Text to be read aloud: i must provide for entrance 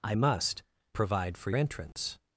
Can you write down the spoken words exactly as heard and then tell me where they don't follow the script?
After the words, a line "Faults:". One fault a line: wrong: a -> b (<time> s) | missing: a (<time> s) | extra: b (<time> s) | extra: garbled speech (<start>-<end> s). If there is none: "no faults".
i must provide for entrance
Faults:
no faults